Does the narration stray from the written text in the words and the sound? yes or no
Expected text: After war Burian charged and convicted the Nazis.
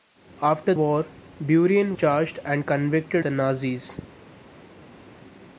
no